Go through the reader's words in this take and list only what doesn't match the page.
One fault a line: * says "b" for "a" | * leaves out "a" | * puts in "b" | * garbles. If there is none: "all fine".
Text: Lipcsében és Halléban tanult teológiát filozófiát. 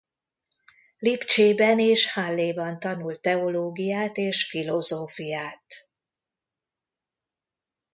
* puts in "és"